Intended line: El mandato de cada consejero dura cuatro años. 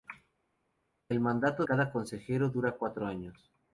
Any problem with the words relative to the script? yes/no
yes